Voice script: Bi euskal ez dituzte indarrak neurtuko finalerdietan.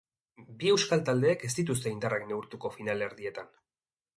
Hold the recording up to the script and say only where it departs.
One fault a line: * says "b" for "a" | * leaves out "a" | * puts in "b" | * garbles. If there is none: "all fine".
* puts in "taldeek"